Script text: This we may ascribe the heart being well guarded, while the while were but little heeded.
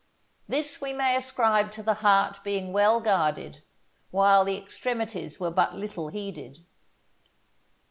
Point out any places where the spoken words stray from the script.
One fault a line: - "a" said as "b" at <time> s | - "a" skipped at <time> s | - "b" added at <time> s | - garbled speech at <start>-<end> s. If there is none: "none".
- "to" added at 1.7 s
- "while" said as "extremities" at 4.6 s